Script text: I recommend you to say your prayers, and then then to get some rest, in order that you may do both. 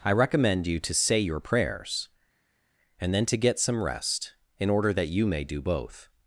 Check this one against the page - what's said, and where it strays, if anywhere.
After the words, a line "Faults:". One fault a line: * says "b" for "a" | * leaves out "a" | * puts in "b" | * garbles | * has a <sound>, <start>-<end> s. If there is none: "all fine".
I recommend you to say your prayers, and then to get some rest, in order that you may do both.
Faults:
* leaves out "then"